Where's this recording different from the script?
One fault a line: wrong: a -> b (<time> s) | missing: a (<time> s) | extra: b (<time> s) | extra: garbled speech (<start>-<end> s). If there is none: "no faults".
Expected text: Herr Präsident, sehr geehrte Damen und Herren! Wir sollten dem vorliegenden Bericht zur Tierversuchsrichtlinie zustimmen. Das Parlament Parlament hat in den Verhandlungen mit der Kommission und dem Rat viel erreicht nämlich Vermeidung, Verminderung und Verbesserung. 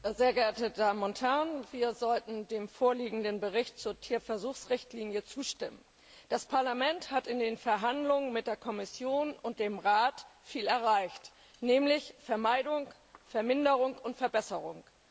missing: Parlament (7.1 s)